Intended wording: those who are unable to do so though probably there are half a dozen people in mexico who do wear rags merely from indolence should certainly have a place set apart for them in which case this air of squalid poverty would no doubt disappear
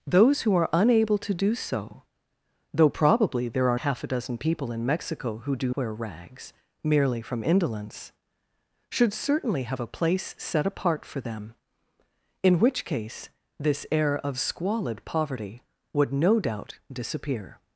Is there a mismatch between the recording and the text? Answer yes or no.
no